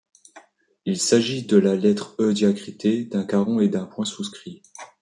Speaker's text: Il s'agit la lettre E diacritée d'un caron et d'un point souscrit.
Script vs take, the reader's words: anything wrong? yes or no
yes